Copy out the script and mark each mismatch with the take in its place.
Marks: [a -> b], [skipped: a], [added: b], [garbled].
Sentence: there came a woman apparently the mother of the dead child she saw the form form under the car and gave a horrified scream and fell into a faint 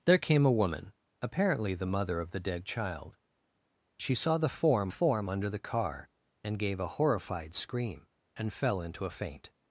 there came a woman apparently the mother of the dead child she saw the form form under the car and gave a horrified scream and fell into a faint